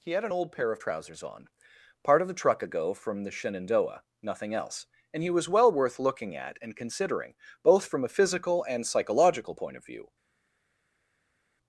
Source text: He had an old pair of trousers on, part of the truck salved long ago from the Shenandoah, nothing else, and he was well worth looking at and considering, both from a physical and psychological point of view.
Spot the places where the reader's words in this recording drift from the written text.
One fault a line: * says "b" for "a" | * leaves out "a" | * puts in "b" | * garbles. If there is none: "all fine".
* leaves out "salved long"